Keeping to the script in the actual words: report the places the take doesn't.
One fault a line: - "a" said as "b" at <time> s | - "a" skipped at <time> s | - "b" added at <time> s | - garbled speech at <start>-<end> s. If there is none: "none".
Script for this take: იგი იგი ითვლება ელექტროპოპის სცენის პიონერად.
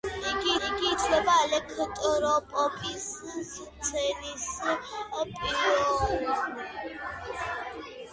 none